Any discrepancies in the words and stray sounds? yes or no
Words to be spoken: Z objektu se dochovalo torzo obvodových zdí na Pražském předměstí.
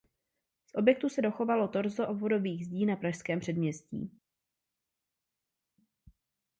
no